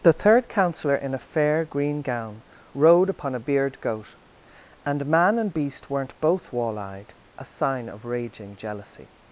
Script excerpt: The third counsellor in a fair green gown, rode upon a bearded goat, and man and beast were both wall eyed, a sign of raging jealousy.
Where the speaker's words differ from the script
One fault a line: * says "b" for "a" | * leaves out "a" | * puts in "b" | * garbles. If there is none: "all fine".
* says "beard" for "bearded"
* says "weren't" for "were"